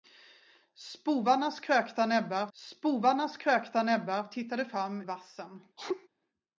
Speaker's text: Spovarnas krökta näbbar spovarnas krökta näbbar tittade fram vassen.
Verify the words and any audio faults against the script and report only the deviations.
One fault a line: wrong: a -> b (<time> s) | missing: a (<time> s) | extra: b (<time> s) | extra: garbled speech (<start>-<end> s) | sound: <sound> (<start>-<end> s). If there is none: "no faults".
sound: sneeze (5.8-6.1 s)